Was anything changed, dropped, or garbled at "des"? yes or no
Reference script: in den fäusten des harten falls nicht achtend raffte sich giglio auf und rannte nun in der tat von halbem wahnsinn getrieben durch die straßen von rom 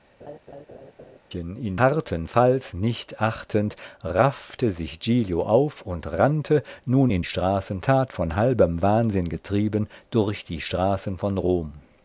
yes